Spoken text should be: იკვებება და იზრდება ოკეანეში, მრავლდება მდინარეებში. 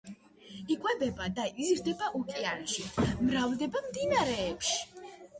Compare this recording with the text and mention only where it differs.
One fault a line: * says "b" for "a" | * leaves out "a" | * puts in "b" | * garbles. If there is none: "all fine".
all fine